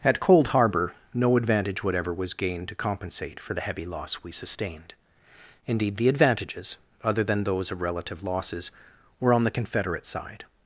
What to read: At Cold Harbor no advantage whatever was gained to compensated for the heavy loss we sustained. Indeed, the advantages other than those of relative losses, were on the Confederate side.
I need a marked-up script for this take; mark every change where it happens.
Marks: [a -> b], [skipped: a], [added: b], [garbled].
At Cold Harbor no advantage whatever was gained to [compensated -> compensate] for the heavy loss we sustained. Indeed, the advantages other than those of relative losses, were on the Confederate side.